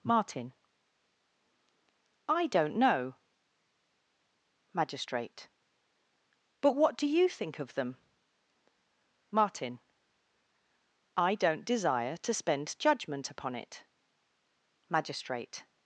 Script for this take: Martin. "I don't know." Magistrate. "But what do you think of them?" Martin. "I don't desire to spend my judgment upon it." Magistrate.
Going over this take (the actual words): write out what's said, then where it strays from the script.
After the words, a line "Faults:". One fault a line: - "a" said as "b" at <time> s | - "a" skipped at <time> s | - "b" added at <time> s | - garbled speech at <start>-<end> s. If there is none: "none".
Martin. "I don't know." Magistrate. "But what do you think of them?" Martin. "I don't desire to spend judgment upon it." Magistrate.
Faults:
- "my" skipped at 12.8 s